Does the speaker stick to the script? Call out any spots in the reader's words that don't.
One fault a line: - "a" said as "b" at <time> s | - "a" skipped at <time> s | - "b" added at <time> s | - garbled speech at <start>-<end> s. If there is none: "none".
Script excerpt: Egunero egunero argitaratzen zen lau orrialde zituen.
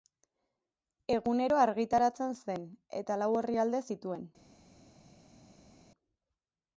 - "egunero" skipped at 1.6 s
- "eta" added at 3.0 s